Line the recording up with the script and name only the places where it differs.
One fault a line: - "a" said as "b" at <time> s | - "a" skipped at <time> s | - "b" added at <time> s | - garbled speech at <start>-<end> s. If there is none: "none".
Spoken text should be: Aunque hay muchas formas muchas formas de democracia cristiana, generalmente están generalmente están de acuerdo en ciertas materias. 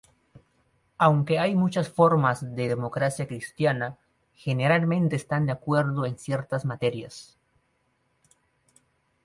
- "muchas formas" skipped at 2.5 s
- "generalmente están" skipped at 5.5 s